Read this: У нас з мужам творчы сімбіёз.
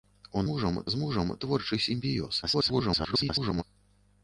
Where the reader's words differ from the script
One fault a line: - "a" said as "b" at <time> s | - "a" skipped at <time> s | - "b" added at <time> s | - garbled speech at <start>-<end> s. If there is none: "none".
- "нас" said as "мужам" at 0.5 s
- garbled speech at 2.4-3.6 s